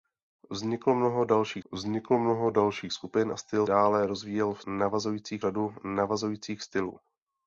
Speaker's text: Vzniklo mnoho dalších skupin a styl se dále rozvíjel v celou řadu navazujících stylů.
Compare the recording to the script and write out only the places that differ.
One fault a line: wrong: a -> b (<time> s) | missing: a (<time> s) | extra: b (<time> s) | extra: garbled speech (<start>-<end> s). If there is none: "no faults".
extra: vzniklo mnoho dalších (1.7 s)
missing: se (3.7 s)
wrong: celou -> navazujících (4.7 s)